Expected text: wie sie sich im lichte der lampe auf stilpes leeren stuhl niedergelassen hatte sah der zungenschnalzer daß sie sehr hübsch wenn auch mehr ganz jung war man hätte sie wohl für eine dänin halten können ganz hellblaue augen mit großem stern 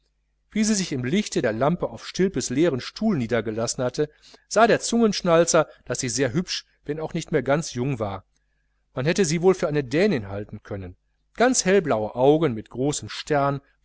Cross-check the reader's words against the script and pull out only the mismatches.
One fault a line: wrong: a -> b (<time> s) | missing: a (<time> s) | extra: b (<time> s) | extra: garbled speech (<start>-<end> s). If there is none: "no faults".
extra: nicht (7.1 s)